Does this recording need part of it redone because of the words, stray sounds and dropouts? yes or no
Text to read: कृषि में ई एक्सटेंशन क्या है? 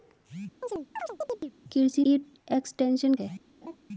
yes